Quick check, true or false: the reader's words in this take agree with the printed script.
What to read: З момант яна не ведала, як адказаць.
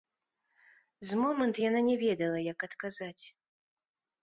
true